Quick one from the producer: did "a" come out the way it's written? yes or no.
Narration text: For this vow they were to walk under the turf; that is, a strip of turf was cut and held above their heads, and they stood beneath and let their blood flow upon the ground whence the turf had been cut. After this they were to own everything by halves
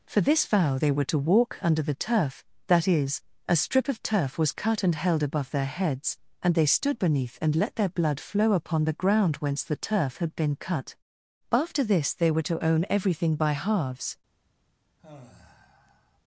yes